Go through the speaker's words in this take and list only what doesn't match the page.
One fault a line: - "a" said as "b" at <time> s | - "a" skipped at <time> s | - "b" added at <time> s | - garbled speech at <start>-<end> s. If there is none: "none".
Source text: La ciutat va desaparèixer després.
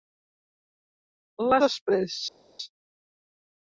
- "ciutat va desaparèixer" skipped at 1.6 s